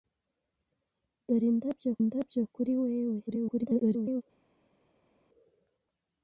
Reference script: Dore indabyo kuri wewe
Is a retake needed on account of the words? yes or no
yes